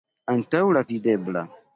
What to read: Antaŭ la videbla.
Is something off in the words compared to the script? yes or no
no